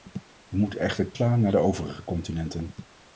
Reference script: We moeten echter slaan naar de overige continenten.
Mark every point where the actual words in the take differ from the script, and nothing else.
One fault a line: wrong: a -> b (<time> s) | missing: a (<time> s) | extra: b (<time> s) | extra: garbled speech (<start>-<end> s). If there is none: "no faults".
no faults